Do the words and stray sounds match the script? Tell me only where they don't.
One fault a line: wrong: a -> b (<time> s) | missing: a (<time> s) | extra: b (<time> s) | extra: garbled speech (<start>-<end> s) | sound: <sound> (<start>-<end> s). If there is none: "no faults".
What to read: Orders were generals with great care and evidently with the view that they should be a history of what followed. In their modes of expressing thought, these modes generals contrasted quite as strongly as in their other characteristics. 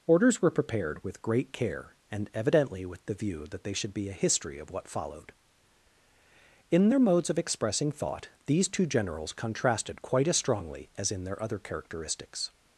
wrong: generals -> prepared (0.5 s)
wrong: modes -> two (8.7 s)